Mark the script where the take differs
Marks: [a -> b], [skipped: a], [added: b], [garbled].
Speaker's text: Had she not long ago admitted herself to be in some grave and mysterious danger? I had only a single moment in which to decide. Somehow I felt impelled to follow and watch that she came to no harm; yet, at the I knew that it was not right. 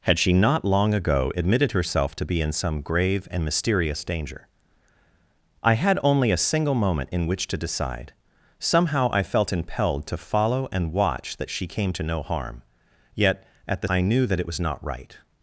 Had she not long ago admitted herself to be in some grave and mysterious danger? I had only a single moment in which to decide. Somehow I felt impelled to follow and watch that she came to no harm; yet, at the I knew that it was not right.